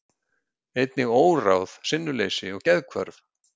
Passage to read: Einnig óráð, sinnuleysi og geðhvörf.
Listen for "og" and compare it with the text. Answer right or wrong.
right